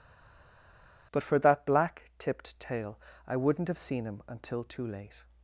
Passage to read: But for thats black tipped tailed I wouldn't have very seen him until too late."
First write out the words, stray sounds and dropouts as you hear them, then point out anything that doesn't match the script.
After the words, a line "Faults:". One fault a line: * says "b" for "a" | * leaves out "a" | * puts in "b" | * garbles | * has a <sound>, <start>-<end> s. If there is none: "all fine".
But for that black tipped tail I wouldn't have seen him until too late."
Faults:
* says "that" for "thats"
* says "tail" for "tailed"
* leaves out "very"